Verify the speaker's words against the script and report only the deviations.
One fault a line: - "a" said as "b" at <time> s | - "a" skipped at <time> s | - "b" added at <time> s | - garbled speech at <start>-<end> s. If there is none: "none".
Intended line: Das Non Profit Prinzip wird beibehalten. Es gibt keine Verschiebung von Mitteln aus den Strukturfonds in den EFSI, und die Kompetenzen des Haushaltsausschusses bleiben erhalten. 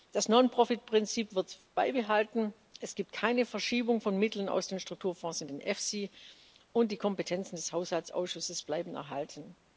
none